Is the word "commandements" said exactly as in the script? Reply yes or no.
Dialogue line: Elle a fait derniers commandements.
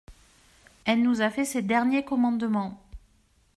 yes